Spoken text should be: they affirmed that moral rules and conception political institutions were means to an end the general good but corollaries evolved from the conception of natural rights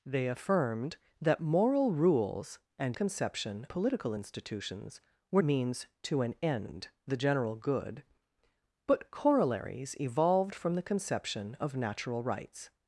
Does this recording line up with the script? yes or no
yes